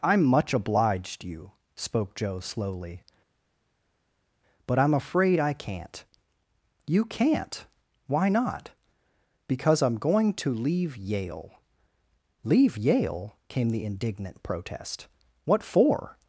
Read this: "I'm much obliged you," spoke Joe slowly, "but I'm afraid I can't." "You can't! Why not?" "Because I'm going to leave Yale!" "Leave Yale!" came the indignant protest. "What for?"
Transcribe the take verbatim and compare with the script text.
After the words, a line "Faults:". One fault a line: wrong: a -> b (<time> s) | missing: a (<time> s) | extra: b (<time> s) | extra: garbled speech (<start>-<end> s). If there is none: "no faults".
"I'm much obliged you," spoke Joe slowly, "but I'm afraid I can't." "You can't! Why not?" "Because I'm going to leave Yale!" "Leave Yale!" came the indignant protest. "What for?"
Faults:
no faults